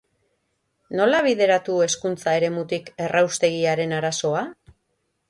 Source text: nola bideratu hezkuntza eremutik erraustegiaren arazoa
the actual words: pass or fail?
pass